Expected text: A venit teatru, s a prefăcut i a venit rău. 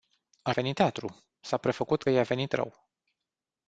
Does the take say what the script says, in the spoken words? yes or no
yes